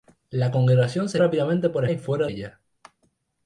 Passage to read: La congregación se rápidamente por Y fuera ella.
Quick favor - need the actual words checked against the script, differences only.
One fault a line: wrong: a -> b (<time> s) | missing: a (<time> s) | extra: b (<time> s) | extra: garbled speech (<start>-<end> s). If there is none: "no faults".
no faults